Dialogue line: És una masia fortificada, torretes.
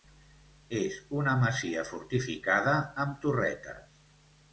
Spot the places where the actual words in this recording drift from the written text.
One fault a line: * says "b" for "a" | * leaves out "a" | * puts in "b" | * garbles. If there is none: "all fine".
* puts in "amb"